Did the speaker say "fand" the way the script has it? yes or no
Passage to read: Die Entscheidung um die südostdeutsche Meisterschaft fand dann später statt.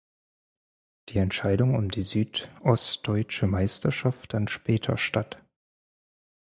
no